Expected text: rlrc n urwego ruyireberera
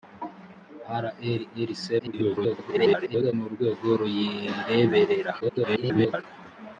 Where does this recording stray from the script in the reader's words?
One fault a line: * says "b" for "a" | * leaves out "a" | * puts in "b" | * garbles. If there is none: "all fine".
* garbles
* garbles